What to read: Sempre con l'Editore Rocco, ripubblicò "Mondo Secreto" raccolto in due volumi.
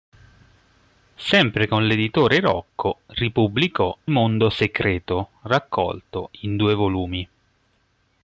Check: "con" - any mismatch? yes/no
no